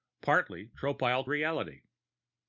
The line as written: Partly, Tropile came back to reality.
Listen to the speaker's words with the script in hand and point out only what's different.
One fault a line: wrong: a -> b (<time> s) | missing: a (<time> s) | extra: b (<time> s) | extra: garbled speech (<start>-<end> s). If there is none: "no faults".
missing: came back to (1.3 s)